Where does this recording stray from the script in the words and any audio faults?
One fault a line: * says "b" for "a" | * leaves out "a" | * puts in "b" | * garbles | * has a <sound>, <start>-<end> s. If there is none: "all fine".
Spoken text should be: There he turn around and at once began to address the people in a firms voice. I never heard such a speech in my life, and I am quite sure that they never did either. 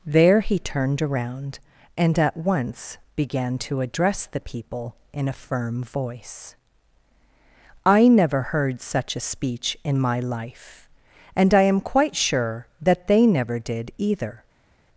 * says "turned" for "turn"
* says "firm" for "firms"